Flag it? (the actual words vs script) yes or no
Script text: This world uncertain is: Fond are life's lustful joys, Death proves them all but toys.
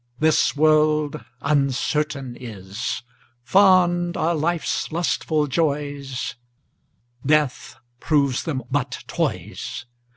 yes